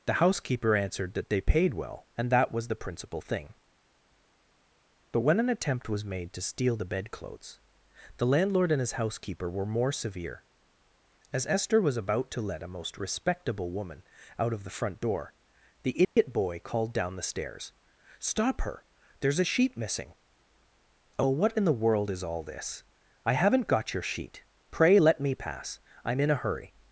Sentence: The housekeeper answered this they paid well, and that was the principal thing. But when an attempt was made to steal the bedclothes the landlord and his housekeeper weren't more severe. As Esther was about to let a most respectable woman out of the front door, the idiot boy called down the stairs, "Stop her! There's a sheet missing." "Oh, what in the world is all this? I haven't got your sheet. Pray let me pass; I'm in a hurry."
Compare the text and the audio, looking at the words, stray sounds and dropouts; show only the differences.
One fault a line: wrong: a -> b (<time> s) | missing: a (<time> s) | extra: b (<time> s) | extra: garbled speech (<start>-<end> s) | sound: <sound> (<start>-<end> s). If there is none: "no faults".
wrong: this -> that (1.1 s)
wrong: weren't -> were (9.5 s)
sound: dropout (16.0-16.2 s)